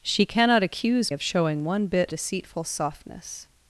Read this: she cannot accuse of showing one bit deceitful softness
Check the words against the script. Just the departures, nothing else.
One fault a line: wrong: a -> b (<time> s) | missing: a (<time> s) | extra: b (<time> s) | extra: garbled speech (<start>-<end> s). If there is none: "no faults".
no faults